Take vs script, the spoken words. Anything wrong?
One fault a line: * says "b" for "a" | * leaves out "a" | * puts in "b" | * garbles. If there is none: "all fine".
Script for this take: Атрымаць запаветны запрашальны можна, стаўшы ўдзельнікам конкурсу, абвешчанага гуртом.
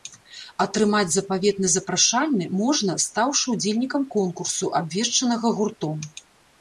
all fine